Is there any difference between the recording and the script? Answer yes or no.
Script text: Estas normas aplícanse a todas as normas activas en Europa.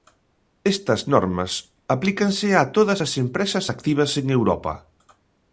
yes